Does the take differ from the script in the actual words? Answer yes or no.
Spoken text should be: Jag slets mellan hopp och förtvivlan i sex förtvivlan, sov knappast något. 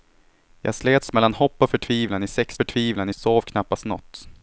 no